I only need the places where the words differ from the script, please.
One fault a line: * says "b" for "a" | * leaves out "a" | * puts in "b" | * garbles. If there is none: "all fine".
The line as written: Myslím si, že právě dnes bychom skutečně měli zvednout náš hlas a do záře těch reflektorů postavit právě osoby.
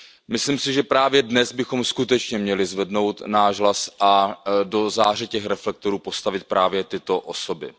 * puts in "tyto"